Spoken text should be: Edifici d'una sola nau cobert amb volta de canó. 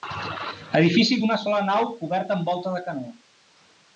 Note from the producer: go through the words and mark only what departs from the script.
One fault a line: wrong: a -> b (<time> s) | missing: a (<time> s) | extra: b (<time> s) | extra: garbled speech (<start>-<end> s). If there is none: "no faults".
no faults